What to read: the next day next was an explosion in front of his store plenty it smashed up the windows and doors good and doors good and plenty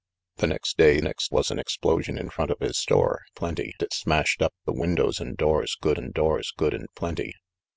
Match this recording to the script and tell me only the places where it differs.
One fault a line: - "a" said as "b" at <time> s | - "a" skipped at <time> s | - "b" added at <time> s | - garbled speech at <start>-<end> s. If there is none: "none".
none